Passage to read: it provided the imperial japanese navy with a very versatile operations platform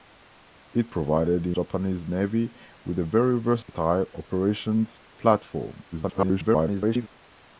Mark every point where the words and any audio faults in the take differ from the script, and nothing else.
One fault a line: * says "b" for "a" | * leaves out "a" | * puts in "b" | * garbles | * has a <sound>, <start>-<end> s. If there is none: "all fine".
* leaves out "imperial"
* has a dropout, 3.6-3.7 s
* garbles